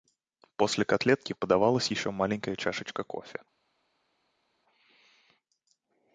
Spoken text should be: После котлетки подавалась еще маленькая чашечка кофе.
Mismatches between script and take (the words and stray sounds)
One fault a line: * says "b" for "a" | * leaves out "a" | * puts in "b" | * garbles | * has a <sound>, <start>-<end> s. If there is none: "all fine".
all fine